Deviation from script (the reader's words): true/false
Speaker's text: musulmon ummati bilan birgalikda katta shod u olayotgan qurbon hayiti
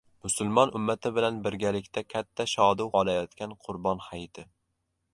false